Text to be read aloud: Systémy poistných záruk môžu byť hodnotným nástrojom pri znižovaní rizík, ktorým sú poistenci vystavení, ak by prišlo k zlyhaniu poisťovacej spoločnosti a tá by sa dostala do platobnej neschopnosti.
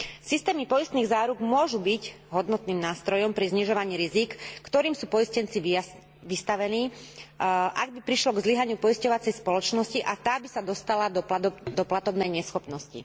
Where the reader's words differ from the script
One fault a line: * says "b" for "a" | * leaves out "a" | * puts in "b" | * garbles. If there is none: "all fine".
all fine